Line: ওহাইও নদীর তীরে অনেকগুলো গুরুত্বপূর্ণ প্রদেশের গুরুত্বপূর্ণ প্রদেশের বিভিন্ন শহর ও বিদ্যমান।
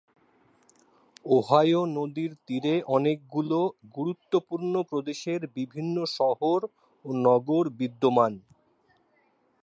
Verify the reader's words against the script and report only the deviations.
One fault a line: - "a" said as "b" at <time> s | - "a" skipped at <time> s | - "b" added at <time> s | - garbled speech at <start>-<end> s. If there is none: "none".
- "গুরুত্বপূর্ণ প্রদেশের" skipped at 5.4 s
- "নগর" added at 7.3 s